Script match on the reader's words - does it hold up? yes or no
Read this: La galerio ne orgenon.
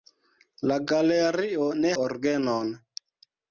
yes